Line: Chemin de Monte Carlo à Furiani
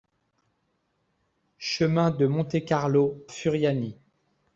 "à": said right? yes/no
no